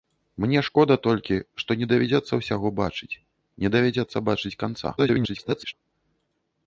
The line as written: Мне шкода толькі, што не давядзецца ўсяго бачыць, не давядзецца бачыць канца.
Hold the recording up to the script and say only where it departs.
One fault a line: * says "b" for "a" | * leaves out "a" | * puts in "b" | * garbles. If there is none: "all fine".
* garbles